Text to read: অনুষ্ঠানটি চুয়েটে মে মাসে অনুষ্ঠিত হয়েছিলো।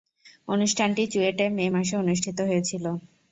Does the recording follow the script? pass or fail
pass